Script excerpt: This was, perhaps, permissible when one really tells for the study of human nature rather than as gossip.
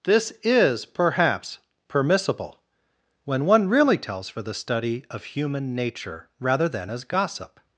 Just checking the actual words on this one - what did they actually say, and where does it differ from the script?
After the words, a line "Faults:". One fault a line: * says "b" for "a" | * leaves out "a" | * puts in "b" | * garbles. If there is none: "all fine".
This is, perhaps, permissible when one really tells for the study of human nature rather than as gossip.
Faults:
* says "is" for "was"